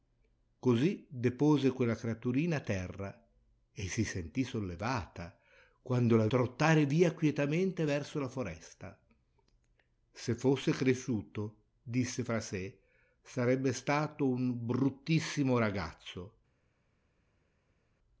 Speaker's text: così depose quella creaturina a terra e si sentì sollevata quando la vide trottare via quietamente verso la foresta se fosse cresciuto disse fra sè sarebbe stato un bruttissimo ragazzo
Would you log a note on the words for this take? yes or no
yes